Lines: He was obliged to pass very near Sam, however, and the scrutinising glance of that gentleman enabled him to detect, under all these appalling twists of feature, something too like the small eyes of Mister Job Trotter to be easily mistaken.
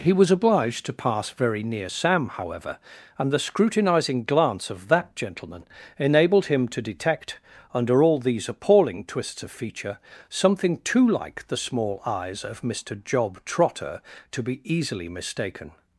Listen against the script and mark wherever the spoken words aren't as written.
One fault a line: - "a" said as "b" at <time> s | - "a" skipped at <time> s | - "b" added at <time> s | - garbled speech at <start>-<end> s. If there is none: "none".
none